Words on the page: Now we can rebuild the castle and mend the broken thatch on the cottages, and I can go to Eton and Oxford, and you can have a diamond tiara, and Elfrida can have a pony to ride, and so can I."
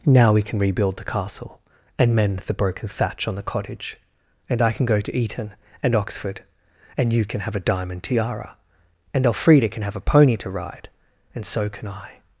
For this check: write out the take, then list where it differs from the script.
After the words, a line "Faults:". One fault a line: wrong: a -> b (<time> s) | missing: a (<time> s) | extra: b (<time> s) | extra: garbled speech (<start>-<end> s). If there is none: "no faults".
Now we can rebuild the castle and mend the broken thatch on the cottage, and I can go to Eton and Oxford, and you can have a diamond tiara, and Elfrida can have a pony to ride, and so can I."
Faults:
wrong: cottages -> cottage (3.4 s)